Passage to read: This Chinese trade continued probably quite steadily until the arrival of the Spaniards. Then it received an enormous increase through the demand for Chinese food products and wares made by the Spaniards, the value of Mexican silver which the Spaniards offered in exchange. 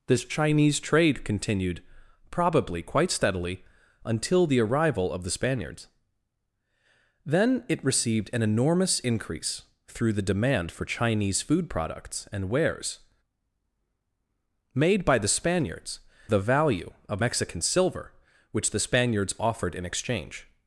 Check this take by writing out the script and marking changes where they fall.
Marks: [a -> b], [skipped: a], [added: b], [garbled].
This Chinese trade continued probably quite steadily until the arrival of the Spaniards. Then it received an enormous increase through the demand for Chinese food products and wares made by the Spaniards, the value of Mexican silver which the Spaniards offered in exchange.